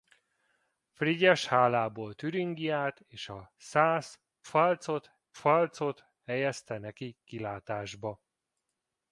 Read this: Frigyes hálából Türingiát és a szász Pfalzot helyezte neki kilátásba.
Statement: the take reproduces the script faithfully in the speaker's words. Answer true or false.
false